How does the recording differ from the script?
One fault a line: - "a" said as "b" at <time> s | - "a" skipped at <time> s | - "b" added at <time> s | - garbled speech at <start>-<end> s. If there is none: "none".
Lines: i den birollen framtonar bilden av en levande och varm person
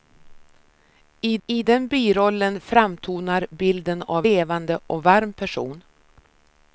- "i" added at 1.5 s
- "en" skipped at 4.3 s